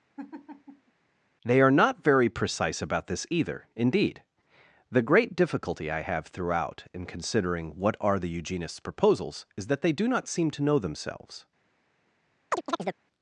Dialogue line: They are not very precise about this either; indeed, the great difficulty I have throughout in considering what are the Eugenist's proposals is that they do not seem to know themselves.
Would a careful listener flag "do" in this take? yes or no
no